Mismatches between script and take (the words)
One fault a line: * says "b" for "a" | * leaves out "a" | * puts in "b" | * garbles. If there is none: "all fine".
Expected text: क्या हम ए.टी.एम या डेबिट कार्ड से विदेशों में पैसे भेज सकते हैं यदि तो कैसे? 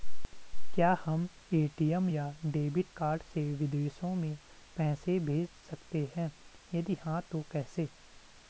* puts in "हाँ"